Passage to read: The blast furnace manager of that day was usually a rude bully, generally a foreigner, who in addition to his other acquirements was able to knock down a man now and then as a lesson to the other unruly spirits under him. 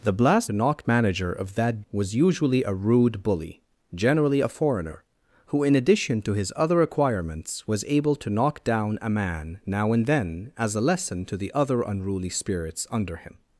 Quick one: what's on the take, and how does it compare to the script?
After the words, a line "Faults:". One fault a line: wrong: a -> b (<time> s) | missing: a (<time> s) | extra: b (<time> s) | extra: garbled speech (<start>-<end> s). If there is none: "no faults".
The blast knock manager of that was usually a rude bully, generally a foreigner, who in addition to his other acquirements was able to knock down a man now and then as a lesson to the other unruly spirits under him.
Faults:
wrong: furnace -> knock (0.5 s)
missing: day (1.8 s)